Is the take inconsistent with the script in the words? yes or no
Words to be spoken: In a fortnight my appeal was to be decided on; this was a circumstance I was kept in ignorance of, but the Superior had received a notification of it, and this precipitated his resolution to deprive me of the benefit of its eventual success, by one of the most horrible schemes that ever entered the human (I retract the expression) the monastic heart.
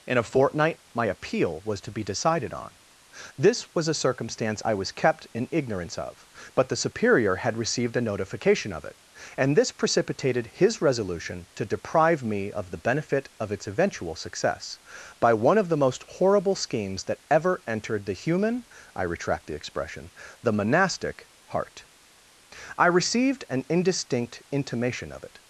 yes